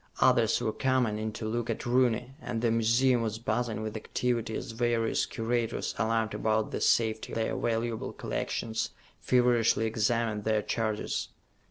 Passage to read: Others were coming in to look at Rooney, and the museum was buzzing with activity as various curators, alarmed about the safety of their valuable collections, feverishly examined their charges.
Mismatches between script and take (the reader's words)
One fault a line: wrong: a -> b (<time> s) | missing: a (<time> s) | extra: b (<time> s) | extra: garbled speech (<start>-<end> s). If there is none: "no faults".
missing: of (7.3 s)